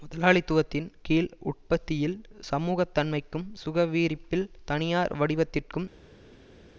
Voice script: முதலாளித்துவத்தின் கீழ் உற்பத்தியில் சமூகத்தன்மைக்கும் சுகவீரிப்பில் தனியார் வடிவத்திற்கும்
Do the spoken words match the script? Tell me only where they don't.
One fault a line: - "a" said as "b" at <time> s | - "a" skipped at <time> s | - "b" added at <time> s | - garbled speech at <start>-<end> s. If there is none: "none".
none